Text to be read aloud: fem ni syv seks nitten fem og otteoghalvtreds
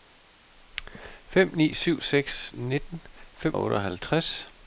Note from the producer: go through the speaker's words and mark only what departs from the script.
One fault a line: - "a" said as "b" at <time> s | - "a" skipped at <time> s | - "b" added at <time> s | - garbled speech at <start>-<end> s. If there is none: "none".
none